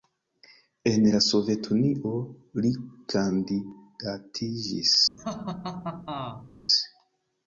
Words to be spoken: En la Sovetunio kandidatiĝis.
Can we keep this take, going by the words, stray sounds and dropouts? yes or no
no